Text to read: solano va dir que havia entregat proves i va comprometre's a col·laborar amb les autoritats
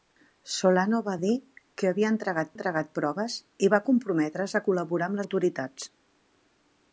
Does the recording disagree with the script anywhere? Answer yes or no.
yes